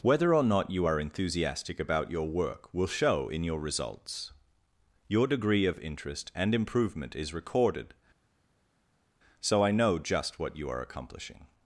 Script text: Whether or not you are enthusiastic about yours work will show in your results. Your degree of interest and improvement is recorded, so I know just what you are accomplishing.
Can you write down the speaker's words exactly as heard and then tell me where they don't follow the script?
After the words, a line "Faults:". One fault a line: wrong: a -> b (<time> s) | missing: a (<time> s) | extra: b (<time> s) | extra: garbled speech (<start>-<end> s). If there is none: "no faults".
Whether or not you are enthusiastic about your work will show in your results. Your degree of interest and improvement is recorded, so I know just what you are accomplishing.
Faults:
wrong: yours -> your (2.1 s)